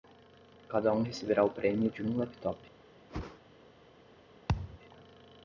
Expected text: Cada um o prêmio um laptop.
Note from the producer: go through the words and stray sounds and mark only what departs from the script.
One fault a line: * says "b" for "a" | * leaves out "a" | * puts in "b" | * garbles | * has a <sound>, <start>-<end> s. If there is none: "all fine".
* puts in "receberá"
* puts in "de"
* has a whoosh, 3.1-3.4 s
* has a thud, 4.5-4.8 s